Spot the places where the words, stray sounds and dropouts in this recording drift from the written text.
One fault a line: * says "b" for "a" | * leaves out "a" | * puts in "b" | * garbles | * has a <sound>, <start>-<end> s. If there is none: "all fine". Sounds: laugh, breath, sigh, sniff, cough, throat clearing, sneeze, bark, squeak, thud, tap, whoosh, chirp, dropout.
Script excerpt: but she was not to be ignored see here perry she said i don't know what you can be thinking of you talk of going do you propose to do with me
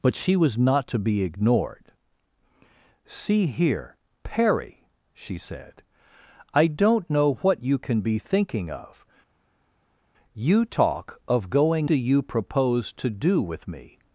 all fine